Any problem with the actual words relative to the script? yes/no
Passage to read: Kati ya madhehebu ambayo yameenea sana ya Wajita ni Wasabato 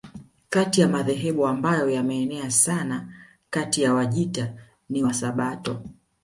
yes